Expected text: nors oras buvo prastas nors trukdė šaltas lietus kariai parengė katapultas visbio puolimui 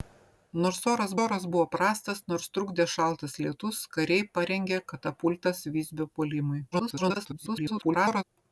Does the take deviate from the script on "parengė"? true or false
false